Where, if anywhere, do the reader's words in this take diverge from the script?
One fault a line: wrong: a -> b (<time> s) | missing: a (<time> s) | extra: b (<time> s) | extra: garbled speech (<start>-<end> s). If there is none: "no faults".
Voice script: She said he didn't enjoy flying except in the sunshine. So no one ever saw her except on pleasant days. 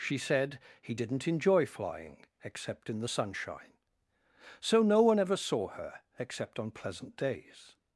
no faults